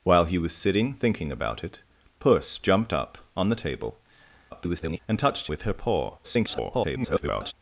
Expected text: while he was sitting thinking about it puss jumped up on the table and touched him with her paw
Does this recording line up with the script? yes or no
no